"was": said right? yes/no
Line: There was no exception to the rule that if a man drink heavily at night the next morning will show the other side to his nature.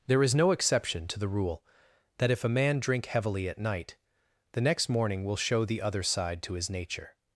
no